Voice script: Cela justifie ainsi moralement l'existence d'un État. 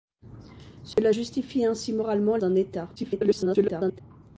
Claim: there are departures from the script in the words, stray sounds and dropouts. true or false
true